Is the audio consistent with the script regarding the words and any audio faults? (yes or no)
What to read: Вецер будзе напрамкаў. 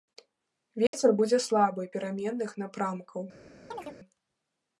no